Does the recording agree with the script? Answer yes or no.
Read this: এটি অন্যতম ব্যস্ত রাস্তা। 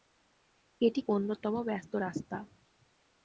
yes